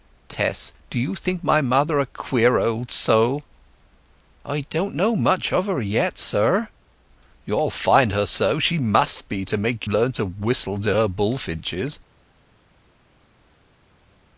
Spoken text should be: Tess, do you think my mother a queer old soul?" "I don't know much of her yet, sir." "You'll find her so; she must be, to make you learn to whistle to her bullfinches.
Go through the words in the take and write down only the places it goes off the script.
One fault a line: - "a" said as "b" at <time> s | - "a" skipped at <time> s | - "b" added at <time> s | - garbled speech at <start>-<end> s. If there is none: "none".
- "you" skipped at 9.9 s